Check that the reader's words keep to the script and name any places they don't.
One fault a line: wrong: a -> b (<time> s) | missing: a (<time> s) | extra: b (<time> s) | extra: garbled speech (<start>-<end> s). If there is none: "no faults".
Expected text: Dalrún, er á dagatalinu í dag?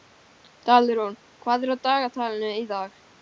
extra: hvað (1.5 s)